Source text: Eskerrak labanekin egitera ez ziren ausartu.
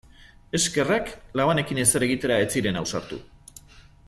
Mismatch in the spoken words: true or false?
true